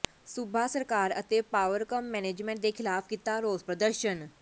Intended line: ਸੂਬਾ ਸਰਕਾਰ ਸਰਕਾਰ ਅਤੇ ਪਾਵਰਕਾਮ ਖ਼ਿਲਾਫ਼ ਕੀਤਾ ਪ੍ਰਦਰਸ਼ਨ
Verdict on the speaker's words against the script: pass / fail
fail